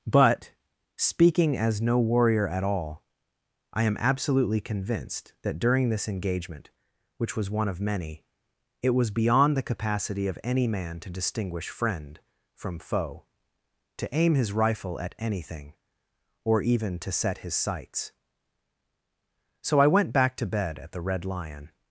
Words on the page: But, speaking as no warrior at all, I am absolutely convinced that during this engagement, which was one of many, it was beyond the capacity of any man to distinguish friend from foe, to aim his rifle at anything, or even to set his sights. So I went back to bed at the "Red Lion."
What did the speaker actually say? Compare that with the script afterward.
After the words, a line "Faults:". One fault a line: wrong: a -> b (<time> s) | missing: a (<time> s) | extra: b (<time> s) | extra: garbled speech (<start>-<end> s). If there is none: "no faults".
But, speaking as no warrior at all, I am absolutely convinced that during this engagement, which was one of many, it was beyond the capacity of any man to distinguish friend from foe, to aim his rifle at anything, or even to set his sights. So I went back to bed at the "Red Lion."
Faults:
no faults